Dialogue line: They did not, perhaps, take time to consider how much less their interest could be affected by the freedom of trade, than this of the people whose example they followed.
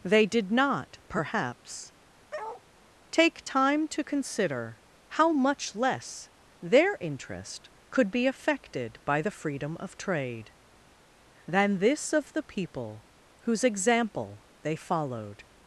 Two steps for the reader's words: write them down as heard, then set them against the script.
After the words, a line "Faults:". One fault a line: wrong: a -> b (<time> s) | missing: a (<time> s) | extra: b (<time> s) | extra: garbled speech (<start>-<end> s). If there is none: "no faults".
They did not, perhaps, take time to consider how much less their interest could be affected by the freedom of trade, than this of the people whose example they followed.
Faults:
no faults